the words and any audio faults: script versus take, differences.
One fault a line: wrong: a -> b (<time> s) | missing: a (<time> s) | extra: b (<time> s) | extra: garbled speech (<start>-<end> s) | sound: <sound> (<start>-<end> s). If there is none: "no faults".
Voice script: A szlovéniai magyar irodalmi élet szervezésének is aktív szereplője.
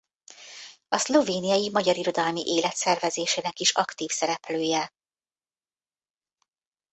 no faults